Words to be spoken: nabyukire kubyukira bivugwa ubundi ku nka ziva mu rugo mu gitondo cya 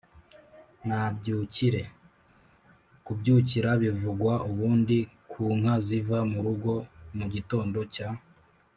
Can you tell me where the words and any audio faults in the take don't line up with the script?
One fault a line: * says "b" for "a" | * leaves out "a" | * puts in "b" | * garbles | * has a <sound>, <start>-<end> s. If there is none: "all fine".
all fine